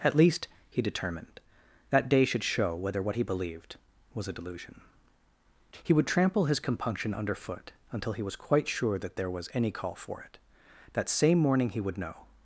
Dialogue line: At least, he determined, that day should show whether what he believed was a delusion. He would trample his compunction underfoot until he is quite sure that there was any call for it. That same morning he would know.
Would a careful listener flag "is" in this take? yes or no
yes